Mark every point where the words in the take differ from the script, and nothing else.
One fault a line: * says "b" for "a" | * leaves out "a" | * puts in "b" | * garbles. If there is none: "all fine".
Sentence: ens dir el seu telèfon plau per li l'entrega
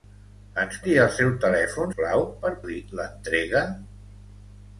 all fine